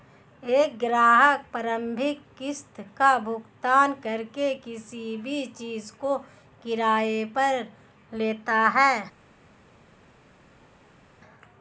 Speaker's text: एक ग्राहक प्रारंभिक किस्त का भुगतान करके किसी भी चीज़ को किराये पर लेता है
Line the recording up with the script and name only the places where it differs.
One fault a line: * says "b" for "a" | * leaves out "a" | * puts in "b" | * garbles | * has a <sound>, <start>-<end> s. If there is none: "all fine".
all fine